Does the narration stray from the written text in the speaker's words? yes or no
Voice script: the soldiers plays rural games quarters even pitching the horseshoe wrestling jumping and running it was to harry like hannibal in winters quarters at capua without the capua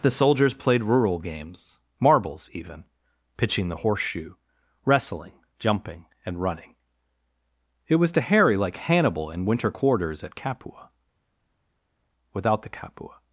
yes